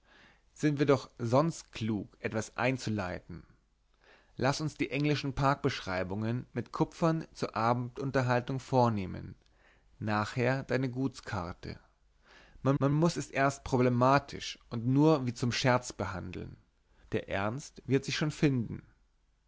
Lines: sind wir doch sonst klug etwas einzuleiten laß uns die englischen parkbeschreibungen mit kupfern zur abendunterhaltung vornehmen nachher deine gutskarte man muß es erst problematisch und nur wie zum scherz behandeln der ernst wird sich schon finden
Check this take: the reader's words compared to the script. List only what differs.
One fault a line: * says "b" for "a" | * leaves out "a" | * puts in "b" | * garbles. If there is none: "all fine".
* puts in "man"